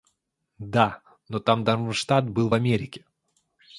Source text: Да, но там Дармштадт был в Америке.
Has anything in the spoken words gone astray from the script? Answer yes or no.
no